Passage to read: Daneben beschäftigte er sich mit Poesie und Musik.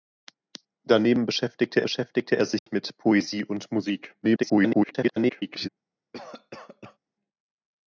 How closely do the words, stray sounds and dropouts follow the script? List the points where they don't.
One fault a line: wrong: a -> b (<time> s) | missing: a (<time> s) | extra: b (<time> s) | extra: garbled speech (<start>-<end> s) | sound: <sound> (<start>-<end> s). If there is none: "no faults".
extra: beschäftigte (1.8 s)
sound: dropout (2.6-2.7 s)
extra: garbled speech (4.2-5.7 s)
sound: cough (6.1-7.0 s)